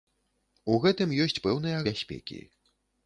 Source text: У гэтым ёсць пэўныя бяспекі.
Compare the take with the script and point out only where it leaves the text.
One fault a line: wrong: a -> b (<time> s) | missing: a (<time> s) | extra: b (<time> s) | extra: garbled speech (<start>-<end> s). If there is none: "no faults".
no faults